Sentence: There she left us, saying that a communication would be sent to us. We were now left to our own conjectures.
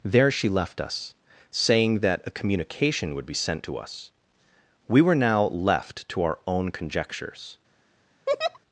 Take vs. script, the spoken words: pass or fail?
pass